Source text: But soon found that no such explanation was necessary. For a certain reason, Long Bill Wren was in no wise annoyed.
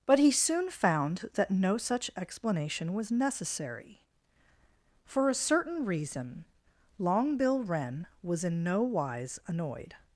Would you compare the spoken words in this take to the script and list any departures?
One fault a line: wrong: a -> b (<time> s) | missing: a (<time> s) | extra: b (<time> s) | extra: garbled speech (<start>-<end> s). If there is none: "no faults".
extra: he (0.2 s)